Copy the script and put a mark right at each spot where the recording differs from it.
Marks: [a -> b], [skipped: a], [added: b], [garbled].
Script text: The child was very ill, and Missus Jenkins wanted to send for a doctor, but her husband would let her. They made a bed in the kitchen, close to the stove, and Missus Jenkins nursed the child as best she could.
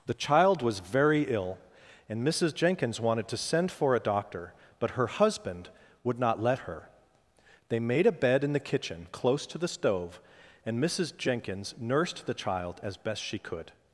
The child was very ill, and Missus Jenkins wanted to send for a doctor, but her husband would [added: not] let her. They made a bed in the kitchen, close to the stove, and Missus Jenkins nursed the child as best she could.